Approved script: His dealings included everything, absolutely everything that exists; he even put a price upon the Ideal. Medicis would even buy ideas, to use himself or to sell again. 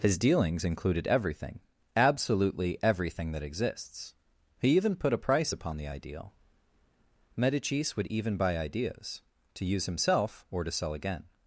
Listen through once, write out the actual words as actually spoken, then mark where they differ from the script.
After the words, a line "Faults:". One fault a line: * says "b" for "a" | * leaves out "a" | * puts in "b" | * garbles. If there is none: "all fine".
His dealings included everything, absolutely everything that exists; he even put a price upon the Ideal. Medicis would even buy ideas, to use himself or to sell again.
Faults:
all fine